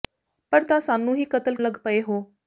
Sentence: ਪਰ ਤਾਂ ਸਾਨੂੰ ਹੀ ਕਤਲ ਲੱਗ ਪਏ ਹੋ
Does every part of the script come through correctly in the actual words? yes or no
yes